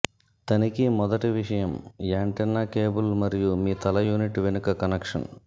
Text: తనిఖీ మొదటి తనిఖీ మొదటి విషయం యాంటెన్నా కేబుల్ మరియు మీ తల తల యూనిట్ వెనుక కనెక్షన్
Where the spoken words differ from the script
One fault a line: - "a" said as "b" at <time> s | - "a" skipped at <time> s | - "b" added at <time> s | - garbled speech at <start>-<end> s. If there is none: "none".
- "తనిఖీ మొదటి" skipped at 1.3 s
- "తల" skipped at 4.1 s